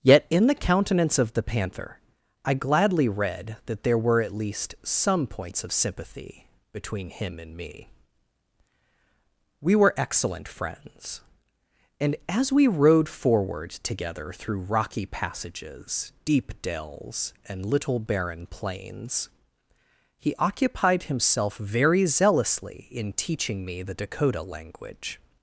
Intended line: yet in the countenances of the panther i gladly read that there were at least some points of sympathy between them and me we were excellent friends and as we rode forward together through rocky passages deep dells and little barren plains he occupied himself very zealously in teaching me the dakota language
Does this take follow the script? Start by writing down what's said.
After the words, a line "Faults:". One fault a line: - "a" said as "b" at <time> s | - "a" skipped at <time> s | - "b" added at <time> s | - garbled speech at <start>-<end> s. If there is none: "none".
yet in the countenance of the panther i gladly read that there were at least some points of sympathy between him and me we were excellent friends and as we rode forward together through rocky passages deep dells and little barren plains he occupied himself very zealously in teaching me the dakota language
Faults:
- "countenances" said as "countenance" at 0.6 s
- "them" said as "him" at 7.1 s